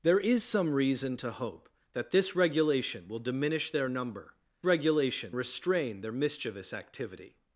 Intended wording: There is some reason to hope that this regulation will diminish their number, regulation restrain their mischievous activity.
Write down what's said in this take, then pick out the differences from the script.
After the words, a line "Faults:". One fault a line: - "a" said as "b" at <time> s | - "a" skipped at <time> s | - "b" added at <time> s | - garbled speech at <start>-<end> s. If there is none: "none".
There is some reason to hope that this regulation will diminish their number, regulation restrain their mischievous activity.
Faults:
none